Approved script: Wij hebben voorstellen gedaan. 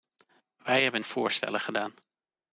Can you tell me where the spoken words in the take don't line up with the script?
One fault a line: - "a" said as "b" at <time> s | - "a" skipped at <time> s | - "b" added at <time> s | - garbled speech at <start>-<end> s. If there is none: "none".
none